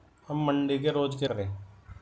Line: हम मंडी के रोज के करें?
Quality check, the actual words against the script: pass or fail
pass